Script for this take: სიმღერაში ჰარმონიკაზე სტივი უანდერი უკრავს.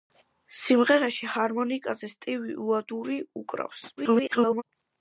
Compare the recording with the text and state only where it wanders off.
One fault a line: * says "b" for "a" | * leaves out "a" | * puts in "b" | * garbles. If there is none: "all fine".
* garbles